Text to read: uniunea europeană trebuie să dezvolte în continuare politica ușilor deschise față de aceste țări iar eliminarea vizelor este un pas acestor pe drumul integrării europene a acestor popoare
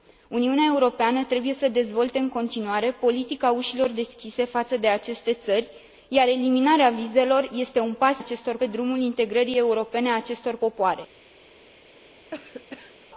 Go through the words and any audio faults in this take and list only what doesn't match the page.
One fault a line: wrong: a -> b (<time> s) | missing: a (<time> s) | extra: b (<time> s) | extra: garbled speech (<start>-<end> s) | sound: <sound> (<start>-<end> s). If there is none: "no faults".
sound: cough (12.3-13.1 s)